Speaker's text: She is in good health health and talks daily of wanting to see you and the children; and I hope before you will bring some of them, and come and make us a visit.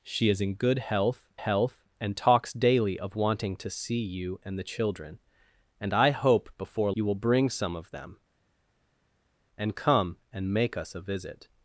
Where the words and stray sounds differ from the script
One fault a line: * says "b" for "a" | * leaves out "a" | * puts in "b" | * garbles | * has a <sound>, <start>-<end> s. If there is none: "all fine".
all fine